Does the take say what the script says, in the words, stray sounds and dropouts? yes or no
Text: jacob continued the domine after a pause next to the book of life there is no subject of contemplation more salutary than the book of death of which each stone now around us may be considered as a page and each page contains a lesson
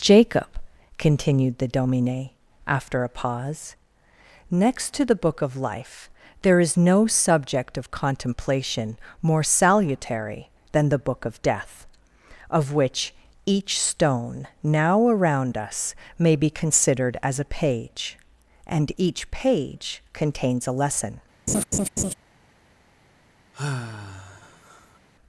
no